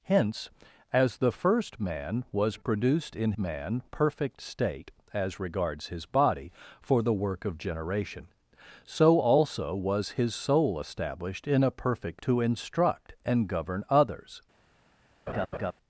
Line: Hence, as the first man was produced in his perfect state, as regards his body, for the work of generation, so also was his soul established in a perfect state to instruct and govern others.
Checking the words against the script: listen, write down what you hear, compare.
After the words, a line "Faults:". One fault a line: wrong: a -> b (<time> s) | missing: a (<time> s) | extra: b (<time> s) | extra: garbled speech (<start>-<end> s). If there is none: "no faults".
Hence, as the first man was produced in man perfect state, as regards his body, for the work of generation, so also was his soul established in a perfect to instruct and govern others.
Faults:
wrong: his -> man (3.4 s)
missing: state (12.2 s)